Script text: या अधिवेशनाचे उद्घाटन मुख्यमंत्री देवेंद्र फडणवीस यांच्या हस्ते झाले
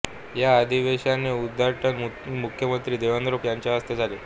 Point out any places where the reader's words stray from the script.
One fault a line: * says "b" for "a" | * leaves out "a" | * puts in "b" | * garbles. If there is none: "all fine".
* leaves out "फडणवीस"